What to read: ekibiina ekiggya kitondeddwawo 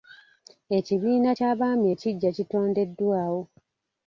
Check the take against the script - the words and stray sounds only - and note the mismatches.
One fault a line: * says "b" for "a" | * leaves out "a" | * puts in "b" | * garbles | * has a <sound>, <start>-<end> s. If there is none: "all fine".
* puts in "ky'abaami"